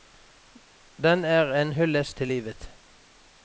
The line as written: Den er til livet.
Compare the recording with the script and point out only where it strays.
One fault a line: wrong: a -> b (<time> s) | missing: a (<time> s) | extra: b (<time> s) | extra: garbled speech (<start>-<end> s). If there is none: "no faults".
extra: en hyllest (1.6 s)